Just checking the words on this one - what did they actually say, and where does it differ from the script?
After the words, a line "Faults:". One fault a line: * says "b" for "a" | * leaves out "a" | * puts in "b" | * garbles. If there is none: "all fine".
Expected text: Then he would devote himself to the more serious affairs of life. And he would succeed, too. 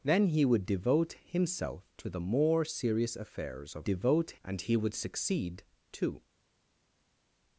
Then he would devote himself to the more serious affairs of devote. And he would succeed, too.
Faults:
* says "devote" for "life"